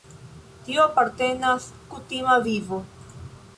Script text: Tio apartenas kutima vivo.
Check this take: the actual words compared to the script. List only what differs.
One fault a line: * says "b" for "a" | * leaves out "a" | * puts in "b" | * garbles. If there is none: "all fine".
all fine